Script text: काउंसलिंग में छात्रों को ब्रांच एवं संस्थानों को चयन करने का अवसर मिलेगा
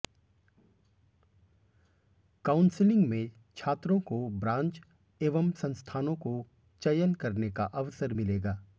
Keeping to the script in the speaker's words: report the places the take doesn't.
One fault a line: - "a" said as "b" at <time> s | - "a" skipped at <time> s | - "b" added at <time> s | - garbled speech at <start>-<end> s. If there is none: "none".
none